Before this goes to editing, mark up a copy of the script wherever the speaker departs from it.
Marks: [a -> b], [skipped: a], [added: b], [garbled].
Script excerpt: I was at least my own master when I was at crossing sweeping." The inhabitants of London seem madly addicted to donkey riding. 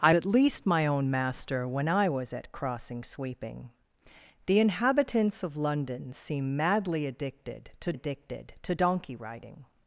I [skipped: was] at least my own master when I was at crossing sweeping." The inhabitants of London seem madly addicted to [added: addicted to] donkey riding.